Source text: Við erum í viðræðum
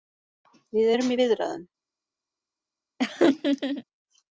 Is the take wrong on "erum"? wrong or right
right